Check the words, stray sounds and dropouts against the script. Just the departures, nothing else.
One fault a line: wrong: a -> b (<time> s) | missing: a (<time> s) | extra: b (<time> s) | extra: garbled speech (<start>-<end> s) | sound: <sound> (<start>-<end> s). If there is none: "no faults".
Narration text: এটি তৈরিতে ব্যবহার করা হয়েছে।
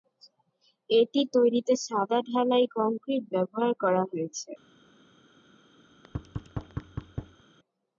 extra: সাদা ঢালাই কংক্রিট (1.9 s)
sound: thud (5.9-7.4 s)